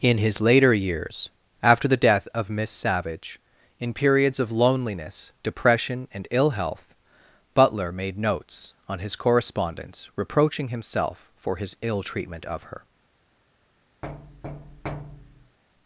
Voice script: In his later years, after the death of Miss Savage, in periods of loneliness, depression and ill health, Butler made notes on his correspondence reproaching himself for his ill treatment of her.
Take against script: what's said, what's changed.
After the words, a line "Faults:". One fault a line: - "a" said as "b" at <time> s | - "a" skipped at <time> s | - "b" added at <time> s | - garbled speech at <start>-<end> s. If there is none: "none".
In his later years, after the death of Miss Savage, in periods of loneliness, depression and ill health, Butler made notes on his correspondence reproaching himself for his ill treatment of her.
Faults:
none